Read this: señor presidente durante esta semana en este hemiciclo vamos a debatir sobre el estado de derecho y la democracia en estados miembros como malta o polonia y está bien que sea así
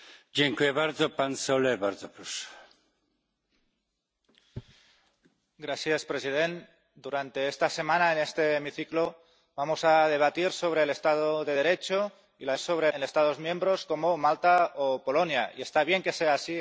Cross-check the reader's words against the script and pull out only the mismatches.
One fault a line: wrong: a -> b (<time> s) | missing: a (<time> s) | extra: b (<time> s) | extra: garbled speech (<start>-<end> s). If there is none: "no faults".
wrong: democracia -> sobre (12.6 s)